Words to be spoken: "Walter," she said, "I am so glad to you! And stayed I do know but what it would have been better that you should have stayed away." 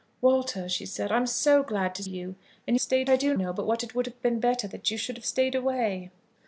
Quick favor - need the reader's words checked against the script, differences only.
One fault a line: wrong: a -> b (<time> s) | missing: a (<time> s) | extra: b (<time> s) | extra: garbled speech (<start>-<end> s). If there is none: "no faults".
no faults